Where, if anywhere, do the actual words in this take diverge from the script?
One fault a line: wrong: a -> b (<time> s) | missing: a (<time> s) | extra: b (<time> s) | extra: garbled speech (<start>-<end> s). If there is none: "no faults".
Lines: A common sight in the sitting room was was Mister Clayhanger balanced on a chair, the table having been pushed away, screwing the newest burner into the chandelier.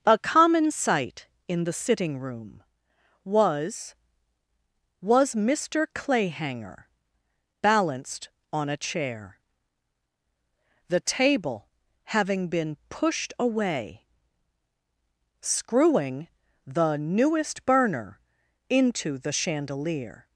no faults